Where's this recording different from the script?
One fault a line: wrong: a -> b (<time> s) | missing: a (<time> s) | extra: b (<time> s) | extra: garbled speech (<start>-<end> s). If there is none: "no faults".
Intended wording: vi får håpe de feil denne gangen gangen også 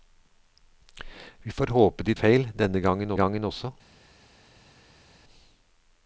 no faults